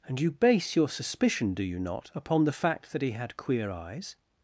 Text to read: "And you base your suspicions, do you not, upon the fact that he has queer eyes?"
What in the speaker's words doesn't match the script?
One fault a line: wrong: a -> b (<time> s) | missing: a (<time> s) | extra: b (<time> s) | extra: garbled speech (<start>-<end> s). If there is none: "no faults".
wrong: suspicions -> suspicion (0.9 s)
wrong: has -> had (3.1 s)